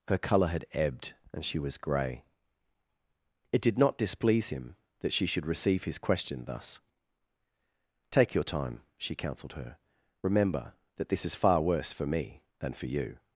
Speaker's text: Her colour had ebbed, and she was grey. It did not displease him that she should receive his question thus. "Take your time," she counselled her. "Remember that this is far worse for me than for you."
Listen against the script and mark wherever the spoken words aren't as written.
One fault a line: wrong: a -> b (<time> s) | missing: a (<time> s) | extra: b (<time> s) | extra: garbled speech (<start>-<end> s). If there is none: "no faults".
no faults